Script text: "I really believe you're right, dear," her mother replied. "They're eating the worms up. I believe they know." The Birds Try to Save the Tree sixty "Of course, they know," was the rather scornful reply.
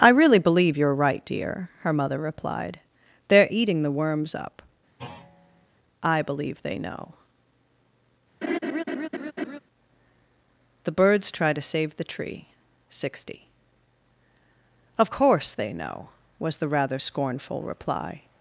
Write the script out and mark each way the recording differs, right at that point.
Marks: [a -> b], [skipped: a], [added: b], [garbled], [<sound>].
"I really believe you're right, dear," her mother replied. "They're eating the worms up. [thud] I believe they know." [laugh] The Birds Try to Save the Tree sixty "Of course, they know," was the rather scornful reply.